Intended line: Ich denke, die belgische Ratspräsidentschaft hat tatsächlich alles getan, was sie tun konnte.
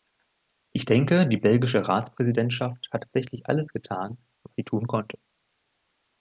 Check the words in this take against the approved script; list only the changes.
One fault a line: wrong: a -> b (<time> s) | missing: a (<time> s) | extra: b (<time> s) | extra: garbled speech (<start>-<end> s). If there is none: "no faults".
no faults